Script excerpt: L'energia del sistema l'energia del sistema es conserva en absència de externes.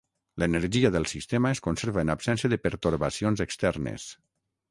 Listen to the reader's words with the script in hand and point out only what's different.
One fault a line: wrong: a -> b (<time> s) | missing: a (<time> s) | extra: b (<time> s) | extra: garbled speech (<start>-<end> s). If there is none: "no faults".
missing: l'energia del sistema (1.5 s)
extra: pertorbacions (2.6 s)